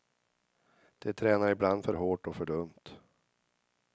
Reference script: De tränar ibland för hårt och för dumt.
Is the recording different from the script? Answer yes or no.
no